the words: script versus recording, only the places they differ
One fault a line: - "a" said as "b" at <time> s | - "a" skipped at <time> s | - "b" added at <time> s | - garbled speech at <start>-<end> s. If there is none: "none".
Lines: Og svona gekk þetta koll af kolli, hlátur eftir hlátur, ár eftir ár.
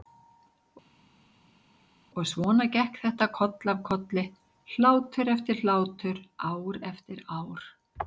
none